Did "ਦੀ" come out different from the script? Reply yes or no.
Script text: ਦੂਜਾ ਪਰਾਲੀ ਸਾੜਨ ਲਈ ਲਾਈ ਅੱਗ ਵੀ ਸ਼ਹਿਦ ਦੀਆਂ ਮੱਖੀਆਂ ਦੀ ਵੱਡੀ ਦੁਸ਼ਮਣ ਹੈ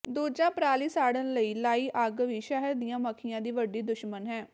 no